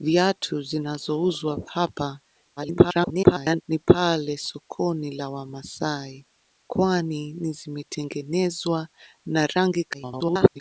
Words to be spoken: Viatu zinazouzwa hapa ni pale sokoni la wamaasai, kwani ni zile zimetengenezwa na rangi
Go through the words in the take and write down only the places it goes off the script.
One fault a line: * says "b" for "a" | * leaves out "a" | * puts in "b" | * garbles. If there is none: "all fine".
* garbles
* leaves out "zile"
* garbles